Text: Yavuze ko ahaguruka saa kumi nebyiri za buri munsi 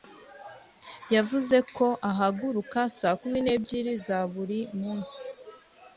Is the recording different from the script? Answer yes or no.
no